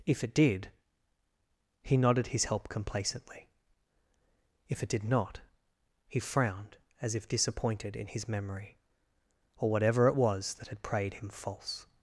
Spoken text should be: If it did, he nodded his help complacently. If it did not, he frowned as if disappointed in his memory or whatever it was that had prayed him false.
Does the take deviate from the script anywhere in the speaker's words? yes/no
no